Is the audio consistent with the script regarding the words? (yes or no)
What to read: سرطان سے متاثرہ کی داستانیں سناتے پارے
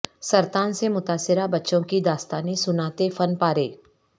no